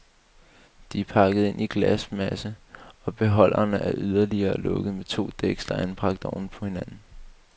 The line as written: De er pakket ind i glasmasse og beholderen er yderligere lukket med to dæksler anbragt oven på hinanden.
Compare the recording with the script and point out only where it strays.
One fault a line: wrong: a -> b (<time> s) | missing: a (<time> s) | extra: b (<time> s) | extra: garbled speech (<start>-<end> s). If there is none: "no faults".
no faults